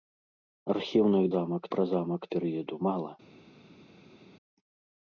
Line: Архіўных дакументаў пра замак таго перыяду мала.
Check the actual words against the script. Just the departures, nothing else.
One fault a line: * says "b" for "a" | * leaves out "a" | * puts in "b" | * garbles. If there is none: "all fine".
* says "замак" for "дакументаў"
* leaves out "таго"